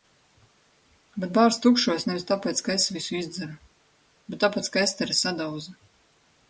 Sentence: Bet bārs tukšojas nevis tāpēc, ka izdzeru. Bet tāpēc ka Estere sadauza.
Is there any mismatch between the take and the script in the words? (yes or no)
yes